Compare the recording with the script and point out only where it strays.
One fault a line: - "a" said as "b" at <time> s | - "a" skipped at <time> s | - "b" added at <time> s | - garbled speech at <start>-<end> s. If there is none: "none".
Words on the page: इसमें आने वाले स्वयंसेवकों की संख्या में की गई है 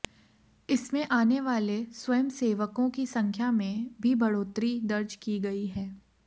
- "भी बढ़ोतरी दर्ज" added at 4.0 s